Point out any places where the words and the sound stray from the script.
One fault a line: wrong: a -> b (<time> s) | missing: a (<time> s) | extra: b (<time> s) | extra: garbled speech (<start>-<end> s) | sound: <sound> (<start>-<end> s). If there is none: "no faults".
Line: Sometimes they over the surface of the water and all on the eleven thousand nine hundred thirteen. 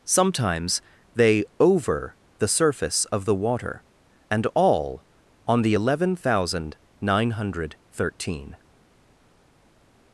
no faults